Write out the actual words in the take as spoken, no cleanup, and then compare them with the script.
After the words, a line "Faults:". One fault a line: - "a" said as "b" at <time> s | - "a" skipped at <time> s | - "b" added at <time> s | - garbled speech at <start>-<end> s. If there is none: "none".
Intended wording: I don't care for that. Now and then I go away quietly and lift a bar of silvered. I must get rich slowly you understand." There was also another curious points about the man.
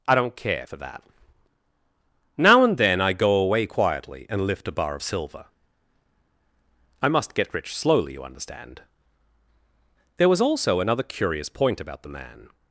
I don't care for that. Now and then I go away quietly and lift a bar of silver. I must get rich slowly you understand." There was also another curious point about the man.
Faults:
- "silvered" said as "silver" at 5.0 s
- "points" said as "point" at 11.5 s